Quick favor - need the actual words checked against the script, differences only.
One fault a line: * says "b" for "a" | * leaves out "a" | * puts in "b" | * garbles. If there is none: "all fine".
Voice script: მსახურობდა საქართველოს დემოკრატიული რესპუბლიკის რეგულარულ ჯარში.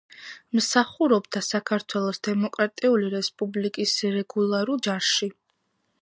all fine